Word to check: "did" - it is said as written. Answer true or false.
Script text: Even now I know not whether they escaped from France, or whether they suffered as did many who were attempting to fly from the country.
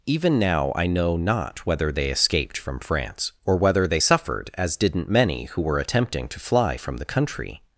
false